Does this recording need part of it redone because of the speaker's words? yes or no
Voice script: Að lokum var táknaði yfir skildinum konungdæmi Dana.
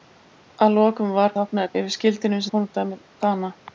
no